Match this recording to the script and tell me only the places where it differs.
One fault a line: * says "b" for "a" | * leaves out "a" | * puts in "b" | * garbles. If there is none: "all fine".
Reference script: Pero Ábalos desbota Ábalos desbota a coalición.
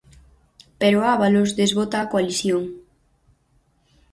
* leaves out "Ábalos desbota"